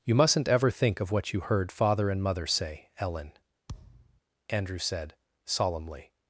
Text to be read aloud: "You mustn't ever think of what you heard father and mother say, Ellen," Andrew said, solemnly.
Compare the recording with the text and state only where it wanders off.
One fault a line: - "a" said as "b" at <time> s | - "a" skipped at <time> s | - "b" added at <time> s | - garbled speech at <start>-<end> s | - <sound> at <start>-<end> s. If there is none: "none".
- thud at 3.7-4.2 s